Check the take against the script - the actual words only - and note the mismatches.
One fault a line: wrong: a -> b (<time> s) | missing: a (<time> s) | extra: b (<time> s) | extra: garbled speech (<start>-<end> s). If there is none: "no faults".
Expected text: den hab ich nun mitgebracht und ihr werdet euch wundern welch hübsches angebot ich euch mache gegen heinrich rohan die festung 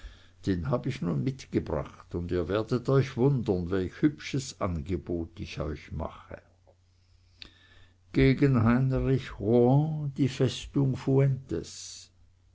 no faults